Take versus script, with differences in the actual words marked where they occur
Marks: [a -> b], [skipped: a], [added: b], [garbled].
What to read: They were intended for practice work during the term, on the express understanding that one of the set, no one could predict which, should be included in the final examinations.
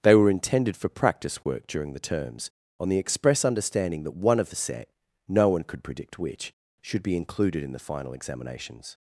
They were intended for practice work during the [term, -> terms] on the express understanding that one of the set, no one could predict which, should be included in the final examinations.